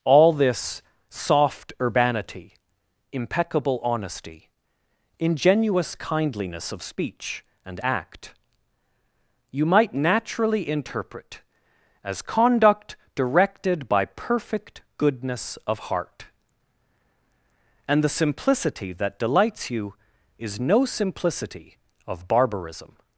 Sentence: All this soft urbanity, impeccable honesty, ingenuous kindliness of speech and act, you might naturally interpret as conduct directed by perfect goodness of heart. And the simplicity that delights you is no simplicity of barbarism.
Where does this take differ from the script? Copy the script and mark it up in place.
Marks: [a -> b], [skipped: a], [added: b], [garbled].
All this soft urbanity, impeccable honesty, ingenuous kindliness of speech and act, you might naturally interpret as conduct directed by perfect goodness of heart. And the simplicity that delights you is no simplicity of barbarism.